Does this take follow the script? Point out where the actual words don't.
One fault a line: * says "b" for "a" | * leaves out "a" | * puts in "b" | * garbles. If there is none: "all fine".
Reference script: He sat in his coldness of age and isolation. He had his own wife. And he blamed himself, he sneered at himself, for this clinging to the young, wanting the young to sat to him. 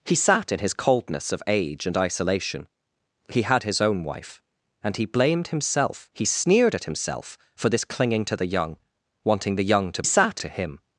all fine